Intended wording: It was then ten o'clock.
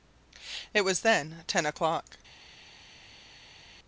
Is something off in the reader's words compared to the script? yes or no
no